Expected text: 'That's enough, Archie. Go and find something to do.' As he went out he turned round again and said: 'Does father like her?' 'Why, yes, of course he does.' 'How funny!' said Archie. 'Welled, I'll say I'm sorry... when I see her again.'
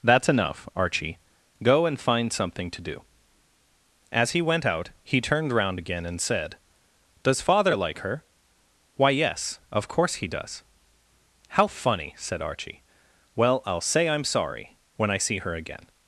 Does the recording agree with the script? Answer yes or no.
no